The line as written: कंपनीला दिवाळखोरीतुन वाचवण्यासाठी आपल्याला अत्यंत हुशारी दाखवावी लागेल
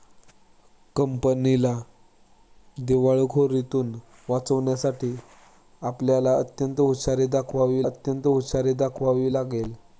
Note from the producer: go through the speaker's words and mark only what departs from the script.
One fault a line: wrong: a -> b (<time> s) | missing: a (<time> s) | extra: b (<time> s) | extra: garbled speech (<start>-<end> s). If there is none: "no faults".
extra: अत्यंत हुशारी दाखवावी (7.8 s)